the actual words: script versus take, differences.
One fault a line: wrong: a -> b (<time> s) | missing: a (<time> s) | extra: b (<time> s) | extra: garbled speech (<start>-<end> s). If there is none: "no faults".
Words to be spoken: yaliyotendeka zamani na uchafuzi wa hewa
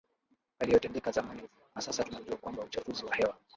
extra: sasa tunajua kwamba (1.8 s)